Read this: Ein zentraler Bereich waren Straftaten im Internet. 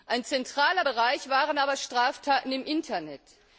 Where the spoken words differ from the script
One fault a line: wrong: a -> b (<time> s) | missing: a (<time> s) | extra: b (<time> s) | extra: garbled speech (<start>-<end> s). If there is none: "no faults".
extra: aber (1.6 s)